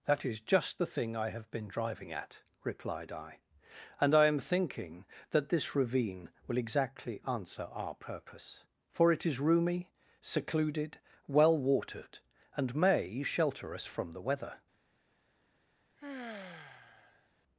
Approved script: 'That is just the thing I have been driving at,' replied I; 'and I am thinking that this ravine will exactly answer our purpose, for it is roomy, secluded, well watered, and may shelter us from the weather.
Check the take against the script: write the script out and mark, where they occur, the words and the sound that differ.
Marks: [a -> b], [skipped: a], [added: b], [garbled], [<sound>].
'That is just the thing I have been driving at,' replied I; 'and I am thinking that this ravine will exactly answer our purpose, for it is roomy, secluded, well watered, and may shelter us from the weather. [sigh]